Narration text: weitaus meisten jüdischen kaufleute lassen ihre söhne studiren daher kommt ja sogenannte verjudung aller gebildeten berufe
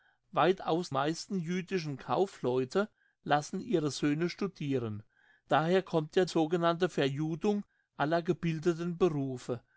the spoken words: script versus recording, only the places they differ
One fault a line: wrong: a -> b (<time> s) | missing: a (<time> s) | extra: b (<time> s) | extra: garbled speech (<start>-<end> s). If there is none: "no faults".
no faults